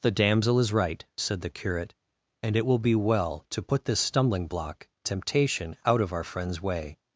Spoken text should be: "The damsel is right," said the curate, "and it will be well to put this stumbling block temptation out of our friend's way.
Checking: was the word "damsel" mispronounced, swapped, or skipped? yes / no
no